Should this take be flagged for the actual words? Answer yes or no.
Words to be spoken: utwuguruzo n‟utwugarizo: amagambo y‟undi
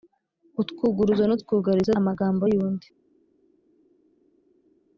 no